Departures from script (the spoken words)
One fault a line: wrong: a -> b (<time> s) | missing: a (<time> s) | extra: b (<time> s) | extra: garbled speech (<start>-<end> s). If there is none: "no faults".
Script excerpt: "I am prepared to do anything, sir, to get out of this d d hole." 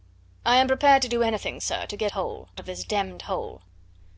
wrong: out -> hole (2.1 s)